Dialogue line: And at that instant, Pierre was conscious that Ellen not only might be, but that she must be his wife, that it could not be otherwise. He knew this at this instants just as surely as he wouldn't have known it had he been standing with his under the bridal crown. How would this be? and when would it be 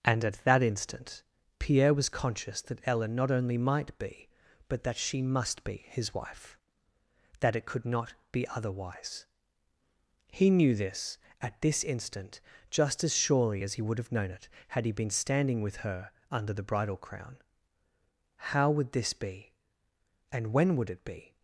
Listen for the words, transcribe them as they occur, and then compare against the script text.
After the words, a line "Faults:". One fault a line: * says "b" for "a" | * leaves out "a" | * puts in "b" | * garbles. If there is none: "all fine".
And at that instant, Pierre was conscious that Ellen not only might be, but that she must be his wife, that it could not be otherwise. He knew this at this instant just as surely as he would have known it had he been standing with her under the bridal crown. How would this be? and when would it be
Faults:
* says "instant" for "instants"
* says "would" for "wouldn't"
* says "her" for "his"